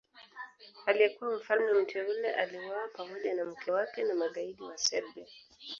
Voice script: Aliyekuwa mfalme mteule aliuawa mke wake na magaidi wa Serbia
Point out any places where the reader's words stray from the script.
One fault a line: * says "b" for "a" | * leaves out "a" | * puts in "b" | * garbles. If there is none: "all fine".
* puts in "pamoja na"